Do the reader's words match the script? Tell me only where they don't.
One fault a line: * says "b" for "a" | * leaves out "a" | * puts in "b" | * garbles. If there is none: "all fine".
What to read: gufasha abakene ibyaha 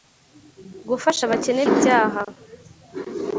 all fine